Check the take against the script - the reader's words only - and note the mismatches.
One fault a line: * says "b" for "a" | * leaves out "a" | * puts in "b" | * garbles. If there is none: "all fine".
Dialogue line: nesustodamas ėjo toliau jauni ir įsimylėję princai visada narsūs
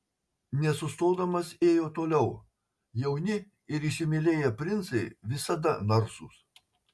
all fine